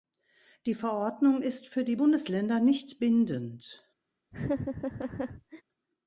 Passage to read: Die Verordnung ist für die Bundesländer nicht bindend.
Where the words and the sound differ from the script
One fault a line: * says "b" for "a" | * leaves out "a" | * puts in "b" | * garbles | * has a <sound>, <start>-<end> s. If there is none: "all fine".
* has a laugh, 4.3-5.6 s